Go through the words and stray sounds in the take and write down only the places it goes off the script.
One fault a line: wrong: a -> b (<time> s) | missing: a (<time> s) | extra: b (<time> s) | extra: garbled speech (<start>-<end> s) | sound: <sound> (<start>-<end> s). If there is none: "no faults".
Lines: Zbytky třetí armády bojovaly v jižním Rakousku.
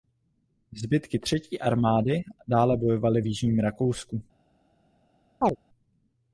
extra: dále (2.5 s)
sound: chirp (5.4-5.6 s)